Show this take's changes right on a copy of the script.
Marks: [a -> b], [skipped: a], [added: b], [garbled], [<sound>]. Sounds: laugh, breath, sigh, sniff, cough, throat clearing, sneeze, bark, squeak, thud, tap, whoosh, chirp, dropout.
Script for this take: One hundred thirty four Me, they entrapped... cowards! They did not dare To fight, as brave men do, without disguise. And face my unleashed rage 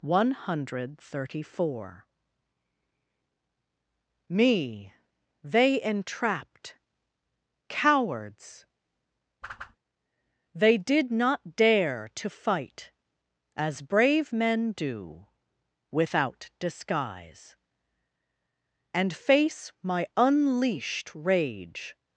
One hundred thirty four Me, they entrapped... cowards! [whoosh] They did not dare To fight, as brave men do, without disguise. And face my unleashed rage